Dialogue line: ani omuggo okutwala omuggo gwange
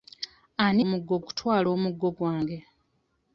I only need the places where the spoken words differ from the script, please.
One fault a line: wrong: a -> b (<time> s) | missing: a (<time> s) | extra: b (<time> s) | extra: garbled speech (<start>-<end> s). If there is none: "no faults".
no faults